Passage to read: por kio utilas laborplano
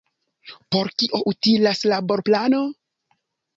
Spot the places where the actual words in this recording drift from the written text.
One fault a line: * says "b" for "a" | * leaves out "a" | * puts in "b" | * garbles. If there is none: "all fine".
all fine